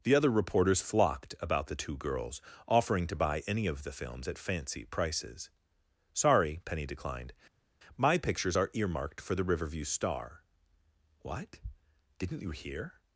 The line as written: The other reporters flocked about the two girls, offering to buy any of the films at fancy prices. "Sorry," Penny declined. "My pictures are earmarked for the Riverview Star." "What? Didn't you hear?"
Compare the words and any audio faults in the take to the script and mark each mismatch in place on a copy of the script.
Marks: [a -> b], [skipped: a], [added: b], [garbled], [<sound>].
The other reporters flocked about the two girls, offering to buy any of the films at fancy prices. "Sorry," Penny declined. "My pictures are earmarked for the Riverview Star." "What? Didn't you hear?"